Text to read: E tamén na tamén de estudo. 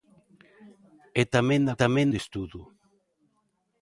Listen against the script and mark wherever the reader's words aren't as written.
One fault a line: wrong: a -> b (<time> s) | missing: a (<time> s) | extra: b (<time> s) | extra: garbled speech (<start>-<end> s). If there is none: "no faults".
no faults